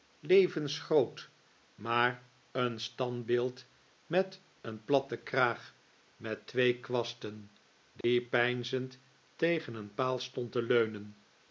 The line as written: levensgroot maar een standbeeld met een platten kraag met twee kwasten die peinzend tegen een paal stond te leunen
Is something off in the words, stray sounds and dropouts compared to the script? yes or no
yes